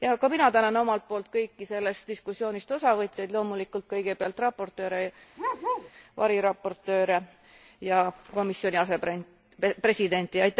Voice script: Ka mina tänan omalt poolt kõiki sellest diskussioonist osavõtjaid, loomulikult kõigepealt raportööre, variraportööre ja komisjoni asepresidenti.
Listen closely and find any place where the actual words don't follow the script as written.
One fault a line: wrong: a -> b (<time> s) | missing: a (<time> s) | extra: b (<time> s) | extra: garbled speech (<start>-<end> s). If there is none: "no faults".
no faults